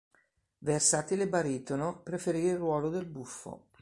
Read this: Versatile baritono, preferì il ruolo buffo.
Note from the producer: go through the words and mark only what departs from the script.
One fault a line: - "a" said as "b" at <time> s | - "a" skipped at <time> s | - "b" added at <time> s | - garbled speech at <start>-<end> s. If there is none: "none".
- "del" added at 2.9 s